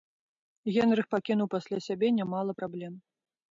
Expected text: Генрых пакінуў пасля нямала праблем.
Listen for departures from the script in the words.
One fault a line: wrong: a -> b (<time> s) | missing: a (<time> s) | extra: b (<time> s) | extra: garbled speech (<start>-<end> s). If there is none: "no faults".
extra: сябе (1.9 s)